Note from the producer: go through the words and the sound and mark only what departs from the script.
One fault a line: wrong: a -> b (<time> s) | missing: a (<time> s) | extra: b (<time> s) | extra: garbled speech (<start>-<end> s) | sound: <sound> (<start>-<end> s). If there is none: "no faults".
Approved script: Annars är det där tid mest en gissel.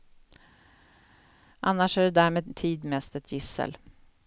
extra: med (2.3 s)
wrong: en -> ett (3.1 s)